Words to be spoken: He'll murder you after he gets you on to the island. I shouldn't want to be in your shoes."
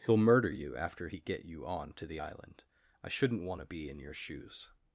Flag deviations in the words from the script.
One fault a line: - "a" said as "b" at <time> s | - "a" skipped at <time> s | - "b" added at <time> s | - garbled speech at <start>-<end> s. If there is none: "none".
- "gets" said as "get" at 1.2 s